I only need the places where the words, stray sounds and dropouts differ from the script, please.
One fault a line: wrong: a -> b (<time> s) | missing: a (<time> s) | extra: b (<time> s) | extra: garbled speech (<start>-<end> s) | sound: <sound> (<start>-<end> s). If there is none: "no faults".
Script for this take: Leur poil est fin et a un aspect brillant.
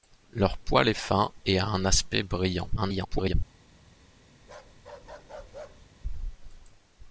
extra: garbled speech (2.8-3.3 s)
sound: bark (4.4-5.9 s)